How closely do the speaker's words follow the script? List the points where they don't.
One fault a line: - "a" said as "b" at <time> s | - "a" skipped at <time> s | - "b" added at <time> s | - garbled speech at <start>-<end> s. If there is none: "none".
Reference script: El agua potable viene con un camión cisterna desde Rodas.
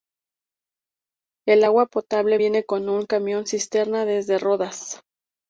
none